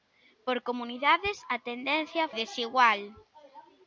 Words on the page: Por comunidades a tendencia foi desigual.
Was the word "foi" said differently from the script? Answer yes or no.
yes